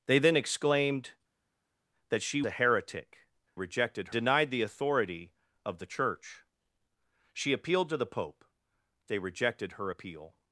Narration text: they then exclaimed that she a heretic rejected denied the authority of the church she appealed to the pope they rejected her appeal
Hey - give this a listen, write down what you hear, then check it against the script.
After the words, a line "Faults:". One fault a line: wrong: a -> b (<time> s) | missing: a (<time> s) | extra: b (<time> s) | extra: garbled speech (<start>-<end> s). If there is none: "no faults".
they then exclaimed that she a heretic rejected denied the authority of the church she appealed to the pope they rejected her appeal
Faults:
no faults